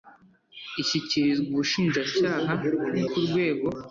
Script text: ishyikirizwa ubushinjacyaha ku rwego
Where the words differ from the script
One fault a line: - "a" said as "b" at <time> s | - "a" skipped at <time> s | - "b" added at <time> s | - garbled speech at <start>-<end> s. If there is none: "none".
none